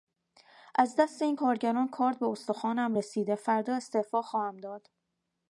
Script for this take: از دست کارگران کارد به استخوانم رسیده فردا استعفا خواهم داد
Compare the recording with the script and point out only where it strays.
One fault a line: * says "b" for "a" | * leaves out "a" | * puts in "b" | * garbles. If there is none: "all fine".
* puts in "این"